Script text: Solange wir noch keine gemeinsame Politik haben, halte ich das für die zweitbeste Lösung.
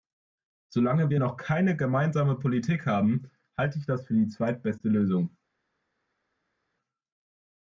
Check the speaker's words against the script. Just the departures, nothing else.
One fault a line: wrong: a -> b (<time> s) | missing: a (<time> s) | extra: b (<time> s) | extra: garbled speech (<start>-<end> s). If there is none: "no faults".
no faults